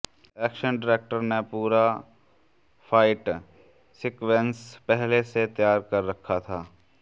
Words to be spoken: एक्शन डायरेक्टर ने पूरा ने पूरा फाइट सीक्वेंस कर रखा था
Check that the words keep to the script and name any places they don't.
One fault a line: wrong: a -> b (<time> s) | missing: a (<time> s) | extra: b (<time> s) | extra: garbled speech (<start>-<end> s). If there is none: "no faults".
wrong: ने पूरा फाइट सीक्वेंस -> फाइट सीक्वेंस पहले से तैयार (2.9 s)